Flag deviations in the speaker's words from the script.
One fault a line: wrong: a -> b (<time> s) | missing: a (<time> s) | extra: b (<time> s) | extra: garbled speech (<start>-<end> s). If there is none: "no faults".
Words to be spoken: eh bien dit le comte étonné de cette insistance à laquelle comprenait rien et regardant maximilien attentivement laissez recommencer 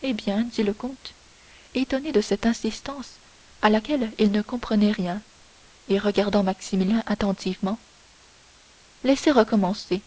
extra: il ne (4.2 s)